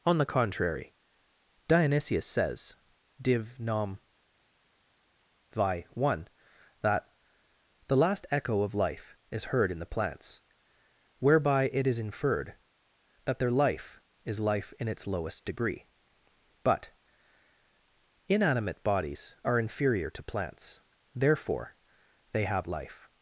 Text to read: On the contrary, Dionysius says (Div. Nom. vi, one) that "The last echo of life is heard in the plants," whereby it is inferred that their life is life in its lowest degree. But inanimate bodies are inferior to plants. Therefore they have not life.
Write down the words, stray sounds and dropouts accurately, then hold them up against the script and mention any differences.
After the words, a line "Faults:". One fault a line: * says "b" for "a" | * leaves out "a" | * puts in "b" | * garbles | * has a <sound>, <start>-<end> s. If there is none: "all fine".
On the contrary, Dionysius says (Div. Nom. vi, one) that "The last echo of life is heard in the plants," whereby it is inferred that their life is life in its lowest degree. But inanimate bodies are inferior to plants. Therefore they have life.
Faults:
* leaves out "not"